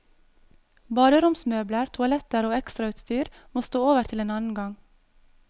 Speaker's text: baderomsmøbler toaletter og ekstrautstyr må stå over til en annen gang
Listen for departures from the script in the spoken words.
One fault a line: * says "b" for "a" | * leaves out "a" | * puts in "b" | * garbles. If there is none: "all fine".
all fine